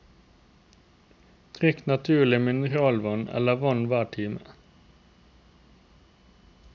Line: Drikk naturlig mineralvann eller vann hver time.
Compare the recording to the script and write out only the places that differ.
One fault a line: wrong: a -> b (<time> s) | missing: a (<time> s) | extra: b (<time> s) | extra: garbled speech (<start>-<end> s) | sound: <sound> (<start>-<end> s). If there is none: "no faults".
no faults